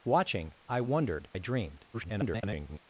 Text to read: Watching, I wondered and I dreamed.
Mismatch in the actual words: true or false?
true